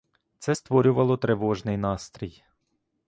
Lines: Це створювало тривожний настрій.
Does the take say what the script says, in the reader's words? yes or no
yes